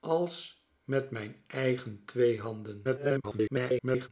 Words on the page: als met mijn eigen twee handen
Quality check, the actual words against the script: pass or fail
fail